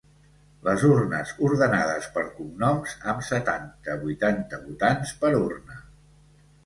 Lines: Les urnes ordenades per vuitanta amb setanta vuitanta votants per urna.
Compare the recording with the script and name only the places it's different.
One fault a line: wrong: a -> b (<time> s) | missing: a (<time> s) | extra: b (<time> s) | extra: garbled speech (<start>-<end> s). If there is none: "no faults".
wrong: vuitanta -> cognoms (2.4 s)